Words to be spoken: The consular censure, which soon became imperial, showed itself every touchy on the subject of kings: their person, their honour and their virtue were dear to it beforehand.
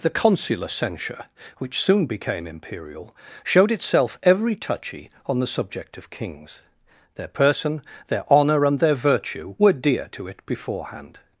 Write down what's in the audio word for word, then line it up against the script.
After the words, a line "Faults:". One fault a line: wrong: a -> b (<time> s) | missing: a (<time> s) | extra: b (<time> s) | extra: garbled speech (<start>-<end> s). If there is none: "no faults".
The consular censure, which soon became imperial, showed itself every touchy on the subject of kings: their person, their honour and their virtue were dear to it beforehand.
Faults:
no faults